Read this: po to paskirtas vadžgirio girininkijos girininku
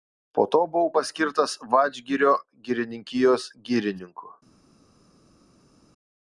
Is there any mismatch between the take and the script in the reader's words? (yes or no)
yes